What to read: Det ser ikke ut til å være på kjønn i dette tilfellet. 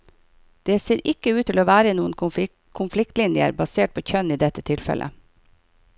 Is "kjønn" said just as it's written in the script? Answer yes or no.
yes